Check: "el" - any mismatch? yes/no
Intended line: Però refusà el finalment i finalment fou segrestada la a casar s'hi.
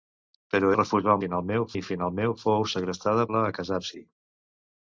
no